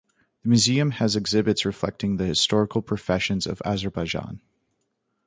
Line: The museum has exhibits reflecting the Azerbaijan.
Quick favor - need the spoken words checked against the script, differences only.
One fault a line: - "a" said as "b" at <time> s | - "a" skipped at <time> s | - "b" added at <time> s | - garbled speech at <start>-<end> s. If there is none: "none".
- "historical professions of" added at 2.2 s